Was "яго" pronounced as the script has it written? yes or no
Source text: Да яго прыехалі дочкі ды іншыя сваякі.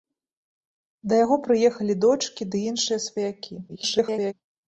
yes